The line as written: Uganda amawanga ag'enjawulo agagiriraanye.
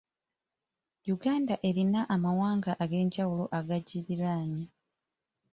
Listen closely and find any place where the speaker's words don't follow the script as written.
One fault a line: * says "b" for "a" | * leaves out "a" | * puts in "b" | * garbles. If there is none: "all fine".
* puts in "erina"